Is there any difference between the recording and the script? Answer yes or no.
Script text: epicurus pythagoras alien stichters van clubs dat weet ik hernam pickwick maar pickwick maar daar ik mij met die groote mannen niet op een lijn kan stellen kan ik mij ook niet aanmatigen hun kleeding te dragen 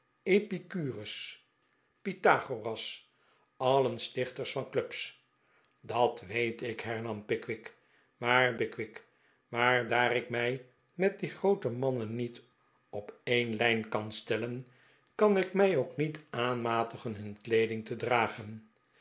no